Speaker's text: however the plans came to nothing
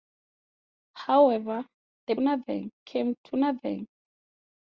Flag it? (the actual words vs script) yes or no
yes